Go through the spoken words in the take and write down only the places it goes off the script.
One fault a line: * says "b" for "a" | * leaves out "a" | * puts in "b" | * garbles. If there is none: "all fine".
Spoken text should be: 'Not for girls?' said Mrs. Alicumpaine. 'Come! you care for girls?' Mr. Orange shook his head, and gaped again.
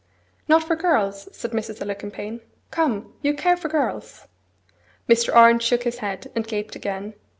all fine